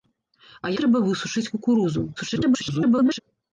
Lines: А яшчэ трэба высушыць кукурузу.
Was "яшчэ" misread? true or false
true